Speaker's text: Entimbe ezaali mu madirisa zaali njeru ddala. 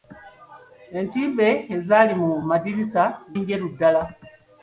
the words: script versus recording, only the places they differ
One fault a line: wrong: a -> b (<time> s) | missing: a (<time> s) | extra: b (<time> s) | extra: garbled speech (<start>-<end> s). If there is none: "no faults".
missing: zaali (3.0 s)